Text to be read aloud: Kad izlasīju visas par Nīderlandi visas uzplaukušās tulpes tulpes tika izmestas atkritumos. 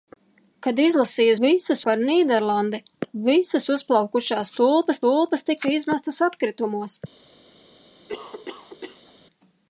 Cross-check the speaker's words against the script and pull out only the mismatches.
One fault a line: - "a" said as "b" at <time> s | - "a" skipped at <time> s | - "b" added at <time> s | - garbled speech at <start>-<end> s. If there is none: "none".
none